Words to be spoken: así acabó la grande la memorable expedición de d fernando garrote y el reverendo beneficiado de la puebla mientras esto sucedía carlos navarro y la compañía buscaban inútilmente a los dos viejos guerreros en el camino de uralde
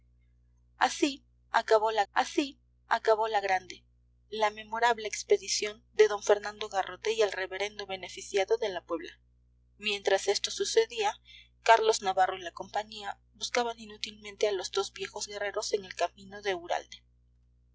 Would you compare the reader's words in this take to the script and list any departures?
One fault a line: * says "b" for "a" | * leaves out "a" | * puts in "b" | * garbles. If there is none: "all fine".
* puts in "así acabó la"